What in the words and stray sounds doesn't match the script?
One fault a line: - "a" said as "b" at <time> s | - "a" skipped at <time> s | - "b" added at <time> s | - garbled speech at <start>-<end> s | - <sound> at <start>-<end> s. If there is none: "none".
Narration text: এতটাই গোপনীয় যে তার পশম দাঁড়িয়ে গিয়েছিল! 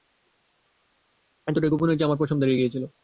- "তার" said as "আমার" at 2.1 s